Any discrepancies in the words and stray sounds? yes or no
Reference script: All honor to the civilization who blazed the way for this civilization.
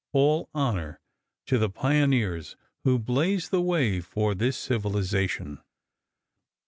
yes